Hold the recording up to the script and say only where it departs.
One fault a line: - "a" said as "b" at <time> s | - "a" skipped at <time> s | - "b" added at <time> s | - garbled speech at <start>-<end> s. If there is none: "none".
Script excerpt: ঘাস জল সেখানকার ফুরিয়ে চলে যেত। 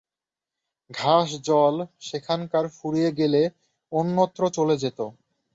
- "গেলে অন্যত্র" added at 3.2 s